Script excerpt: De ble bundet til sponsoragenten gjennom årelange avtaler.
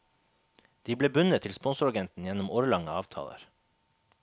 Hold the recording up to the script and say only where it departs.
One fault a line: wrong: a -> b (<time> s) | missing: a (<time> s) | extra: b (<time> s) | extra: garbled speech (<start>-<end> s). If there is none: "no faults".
no faults